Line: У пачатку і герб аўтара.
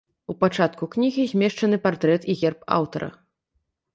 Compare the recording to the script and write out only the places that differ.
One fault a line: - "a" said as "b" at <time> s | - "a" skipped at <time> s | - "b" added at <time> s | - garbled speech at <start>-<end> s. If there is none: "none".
- "кнігі змешчаны партрэт" added at 0.9 s